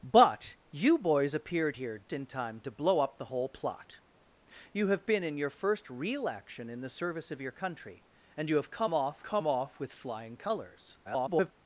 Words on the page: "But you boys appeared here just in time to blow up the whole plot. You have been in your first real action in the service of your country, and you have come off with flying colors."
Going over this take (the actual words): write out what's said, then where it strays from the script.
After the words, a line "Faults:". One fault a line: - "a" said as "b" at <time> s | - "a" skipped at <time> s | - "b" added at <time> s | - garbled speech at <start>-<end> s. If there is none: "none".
"But you boys appeared here in time to blow up the whole plot. You have been in your first real action in the service of your country, and you have come off come off with flying colors." [garbled]
Faults:
- "just" skipped at 2.0 s
- "come off" added at 9.2 s
- garbled speech at 11.0-11.5 s